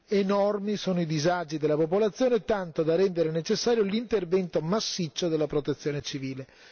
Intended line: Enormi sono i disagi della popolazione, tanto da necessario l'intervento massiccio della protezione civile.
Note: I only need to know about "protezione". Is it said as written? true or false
true